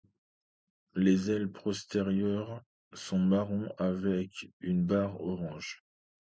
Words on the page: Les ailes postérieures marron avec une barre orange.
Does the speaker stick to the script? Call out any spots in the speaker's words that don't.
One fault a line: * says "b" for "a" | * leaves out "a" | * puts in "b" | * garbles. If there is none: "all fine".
* puts in "sont"